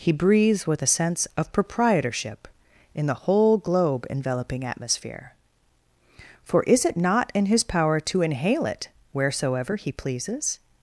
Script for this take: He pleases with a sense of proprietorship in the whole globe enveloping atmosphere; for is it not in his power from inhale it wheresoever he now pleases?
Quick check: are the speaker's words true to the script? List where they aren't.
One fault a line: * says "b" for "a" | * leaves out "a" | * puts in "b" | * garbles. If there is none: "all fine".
* says "breathes" for "pleases"
* says "to" for "from"
* leaves out "now"